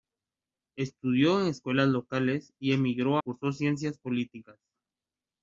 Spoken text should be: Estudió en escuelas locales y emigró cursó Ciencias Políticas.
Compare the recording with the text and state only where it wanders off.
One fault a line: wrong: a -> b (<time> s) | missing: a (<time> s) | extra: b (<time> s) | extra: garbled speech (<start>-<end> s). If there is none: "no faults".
no faults